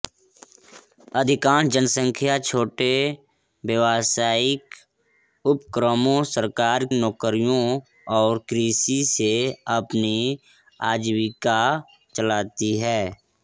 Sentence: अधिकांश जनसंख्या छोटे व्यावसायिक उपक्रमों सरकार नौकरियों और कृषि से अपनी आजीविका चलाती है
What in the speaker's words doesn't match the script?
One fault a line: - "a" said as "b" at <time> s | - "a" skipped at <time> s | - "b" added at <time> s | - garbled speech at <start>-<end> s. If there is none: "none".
none